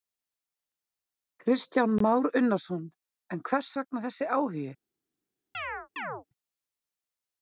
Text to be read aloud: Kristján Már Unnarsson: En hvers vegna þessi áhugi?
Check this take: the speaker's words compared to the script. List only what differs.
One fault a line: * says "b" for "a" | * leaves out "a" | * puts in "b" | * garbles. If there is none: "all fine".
all fine